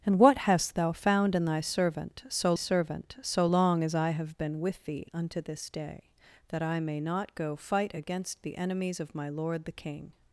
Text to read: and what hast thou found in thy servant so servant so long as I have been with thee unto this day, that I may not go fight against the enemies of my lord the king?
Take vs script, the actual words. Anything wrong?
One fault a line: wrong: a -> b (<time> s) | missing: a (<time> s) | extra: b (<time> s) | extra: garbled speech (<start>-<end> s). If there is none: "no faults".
no faults